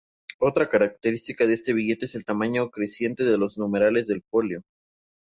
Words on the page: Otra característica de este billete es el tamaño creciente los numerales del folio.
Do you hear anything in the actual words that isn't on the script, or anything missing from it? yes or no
yes